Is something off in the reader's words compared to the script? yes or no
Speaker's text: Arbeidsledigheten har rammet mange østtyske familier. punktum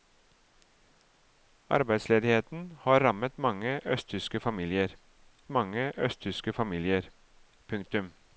yes